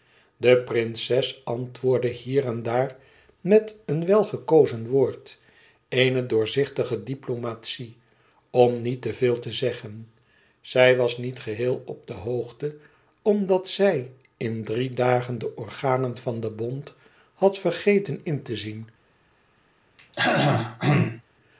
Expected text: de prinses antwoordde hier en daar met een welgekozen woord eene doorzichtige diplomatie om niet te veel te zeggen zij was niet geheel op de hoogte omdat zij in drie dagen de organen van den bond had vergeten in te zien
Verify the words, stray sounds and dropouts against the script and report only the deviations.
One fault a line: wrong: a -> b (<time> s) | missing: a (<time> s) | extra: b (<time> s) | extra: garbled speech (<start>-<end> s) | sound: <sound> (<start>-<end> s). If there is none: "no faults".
sound: throat clearing (20.0-21.2 s)